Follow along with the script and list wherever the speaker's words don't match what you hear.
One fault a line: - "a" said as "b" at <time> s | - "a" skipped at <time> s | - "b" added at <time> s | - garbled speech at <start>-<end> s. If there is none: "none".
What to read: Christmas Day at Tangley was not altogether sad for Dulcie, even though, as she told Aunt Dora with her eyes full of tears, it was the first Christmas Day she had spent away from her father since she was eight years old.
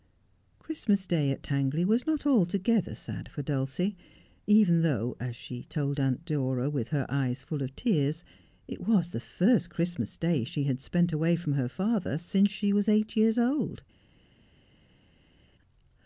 none